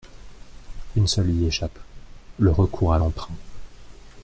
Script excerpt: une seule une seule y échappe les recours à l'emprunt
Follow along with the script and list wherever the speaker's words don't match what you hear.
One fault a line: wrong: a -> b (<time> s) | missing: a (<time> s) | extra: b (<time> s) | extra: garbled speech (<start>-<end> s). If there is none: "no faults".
missing: une seule (1.3 s)
wrong: les -> le (2.4 s)